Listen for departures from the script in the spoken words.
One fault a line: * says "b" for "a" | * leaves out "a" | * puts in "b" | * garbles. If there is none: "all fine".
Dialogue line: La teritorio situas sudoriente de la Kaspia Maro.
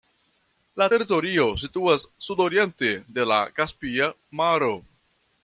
all fine